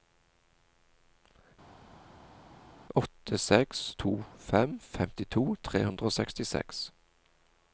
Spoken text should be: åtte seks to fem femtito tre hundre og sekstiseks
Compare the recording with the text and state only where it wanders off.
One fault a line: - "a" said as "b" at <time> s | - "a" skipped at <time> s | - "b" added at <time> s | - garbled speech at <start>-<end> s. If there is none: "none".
none